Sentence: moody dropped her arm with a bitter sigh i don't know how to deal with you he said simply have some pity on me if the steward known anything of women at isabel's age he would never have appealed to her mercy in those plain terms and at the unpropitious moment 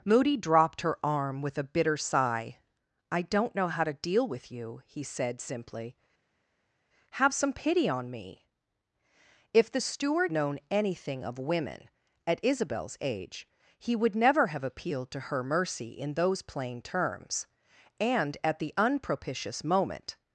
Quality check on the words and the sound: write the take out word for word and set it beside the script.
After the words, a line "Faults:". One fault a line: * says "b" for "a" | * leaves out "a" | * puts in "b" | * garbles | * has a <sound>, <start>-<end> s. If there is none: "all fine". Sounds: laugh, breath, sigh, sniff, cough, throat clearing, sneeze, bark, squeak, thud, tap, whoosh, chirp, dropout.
moody dropped her arm with a bitter sigh i don't know how to deal with you he said simply have some pity on me if the steward known anything of women at isabel's age he would never have appealed to her mercy in those plain terms and at the unpropitious moment
Faults:
all fine